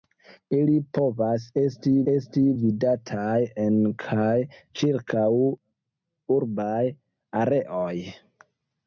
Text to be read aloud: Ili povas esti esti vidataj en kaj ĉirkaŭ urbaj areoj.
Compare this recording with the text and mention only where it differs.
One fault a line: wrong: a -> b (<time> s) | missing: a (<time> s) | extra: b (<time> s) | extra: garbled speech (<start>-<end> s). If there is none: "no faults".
no faults